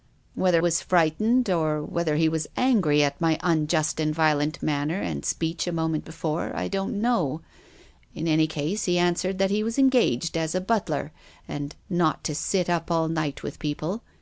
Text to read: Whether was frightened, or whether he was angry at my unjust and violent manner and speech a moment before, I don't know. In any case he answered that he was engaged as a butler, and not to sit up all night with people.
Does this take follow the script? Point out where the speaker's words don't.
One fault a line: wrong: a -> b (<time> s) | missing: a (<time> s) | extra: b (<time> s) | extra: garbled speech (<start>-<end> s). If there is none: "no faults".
no faults